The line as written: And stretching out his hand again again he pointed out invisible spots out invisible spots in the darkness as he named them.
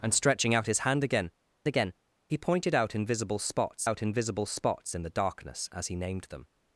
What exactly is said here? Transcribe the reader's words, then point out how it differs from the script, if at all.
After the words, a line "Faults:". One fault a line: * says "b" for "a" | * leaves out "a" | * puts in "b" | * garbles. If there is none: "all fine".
And stretching out his hand again again he pointed out invisible spots out invisible spots in the darkness as he named them.
Faults:
all fine